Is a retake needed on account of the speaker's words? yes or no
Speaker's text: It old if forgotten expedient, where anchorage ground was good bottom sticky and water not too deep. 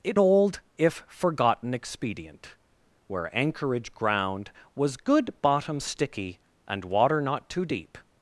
no